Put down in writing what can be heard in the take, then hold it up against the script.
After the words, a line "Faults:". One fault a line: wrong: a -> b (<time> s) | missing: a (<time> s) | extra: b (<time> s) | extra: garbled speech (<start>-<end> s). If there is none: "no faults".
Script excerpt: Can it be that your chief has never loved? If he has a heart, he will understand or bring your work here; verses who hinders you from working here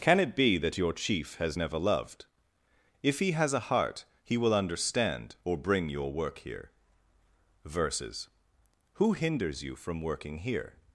Can it be that your chief has never loved? If he has a heart, he will understand or bring your work here; verses who hinders you from working here
Faults:
no faults